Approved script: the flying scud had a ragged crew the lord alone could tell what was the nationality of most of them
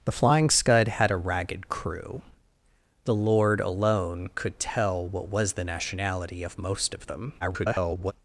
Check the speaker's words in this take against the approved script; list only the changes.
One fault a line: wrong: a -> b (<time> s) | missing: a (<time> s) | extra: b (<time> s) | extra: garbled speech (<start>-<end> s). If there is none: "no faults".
extra: garbled speech (7.4-8.1 s)